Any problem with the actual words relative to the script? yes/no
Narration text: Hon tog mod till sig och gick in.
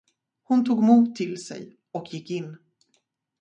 no